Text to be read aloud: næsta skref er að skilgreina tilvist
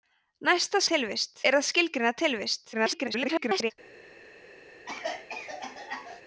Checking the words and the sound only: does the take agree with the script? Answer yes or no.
no